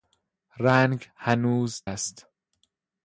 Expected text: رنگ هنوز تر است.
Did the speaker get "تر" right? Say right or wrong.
wrong